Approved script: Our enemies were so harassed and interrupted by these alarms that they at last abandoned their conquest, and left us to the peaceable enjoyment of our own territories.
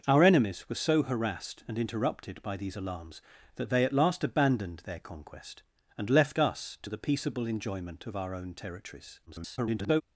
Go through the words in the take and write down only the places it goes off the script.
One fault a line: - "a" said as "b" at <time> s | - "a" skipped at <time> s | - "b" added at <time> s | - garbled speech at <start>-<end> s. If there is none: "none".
- garbled speech at 9.3-10.0 s